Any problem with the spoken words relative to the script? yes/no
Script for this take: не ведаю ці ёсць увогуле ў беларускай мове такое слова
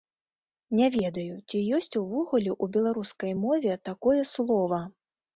no